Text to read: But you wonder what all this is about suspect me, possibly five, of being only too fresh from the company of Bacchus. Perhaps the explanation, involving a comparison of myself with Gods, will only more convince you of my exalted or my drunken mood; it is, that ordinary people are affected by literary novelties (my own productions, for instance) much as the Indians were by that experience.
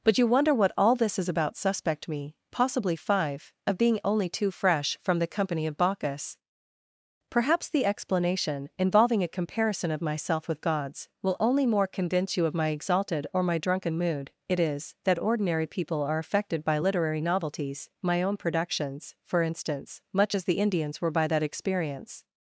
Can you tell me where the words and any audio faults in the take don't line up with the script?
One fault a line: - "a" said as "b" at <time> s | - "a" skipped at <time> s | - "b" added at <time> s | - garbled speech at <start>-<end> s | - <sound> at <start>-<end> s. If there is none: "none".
none